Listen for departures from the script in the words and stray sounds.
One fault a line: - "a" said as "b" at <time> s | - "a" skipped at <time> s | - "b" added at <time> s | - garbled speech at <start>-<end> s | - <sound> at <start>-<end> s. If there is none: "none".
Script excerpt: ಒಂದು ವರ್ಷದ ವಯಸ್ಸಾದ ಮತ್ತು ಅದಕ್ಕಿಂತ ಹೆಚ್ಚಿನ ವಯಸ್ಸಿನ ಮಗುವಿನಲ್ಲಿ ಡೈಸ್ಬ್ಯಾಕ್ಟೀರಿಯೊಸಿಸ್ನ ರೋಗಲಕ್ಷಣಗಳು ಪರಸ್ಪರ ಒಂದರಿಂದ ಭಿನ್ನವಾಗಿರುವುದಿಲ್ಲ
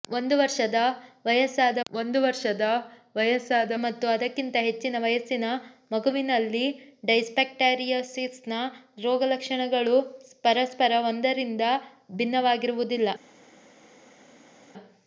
- "ಒಂದು ವರ್ಷದ ವಯಸ್ಸಾದ" added at 1.9 s